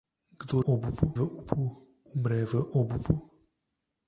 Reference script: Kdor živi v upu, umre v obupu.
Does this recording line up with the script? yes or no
no